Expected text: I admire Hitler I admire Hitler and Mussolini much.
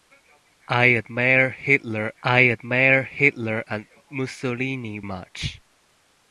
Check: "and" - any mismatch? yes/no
no